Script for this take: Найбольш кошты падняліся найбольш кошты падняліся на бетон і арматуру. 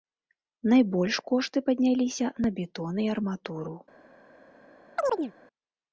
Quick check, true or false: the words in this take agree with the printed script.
false